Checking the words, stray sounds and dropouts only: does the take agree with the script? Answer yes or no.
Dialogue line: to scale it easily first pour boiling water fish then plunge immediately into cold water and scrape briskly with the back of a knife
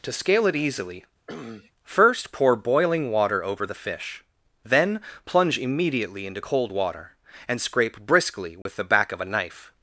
no